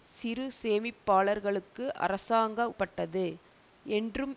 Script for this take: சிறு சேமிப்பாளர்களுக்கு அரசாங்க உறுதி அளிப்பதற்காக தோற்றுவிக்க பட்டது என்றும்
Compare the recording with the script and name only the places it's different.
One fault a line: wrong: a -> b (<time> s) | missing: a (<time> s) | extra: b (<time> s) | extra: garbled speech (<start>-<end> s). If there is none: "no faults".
missing: உறுதி அளிப்பதற்காக தோற்றுவிக்க (2.7 s)